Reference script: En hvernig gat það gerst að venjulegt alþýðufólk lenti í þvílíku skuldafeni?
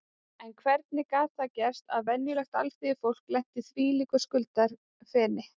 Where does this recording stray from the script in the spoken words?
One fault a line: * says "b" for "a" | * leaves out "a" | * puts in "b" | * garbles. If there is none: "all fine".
all fine